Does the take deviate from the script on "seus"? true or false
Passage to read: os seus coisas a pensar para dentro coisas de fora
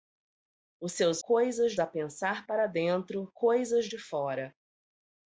false